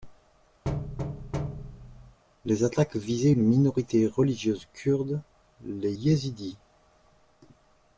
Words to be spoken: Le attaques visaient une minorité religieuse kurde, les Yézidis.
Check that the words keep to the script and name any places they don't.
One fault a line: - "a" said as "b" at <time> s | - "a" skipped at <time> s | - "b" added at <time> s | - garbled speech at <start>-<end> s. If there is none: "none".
- "Le" said as "Les" at 2.4 s